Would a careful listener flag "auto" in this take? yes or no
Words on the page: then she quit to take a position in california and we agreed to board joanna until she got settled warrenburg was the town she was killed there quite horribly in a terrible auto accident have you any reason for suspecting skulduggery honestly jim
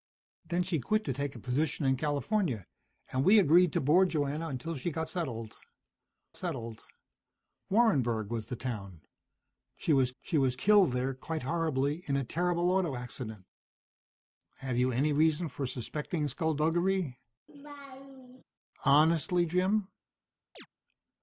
no